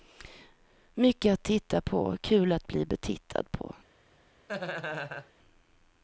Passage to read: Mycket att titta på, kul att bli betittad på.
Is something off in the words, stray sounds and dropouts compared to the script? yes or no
yes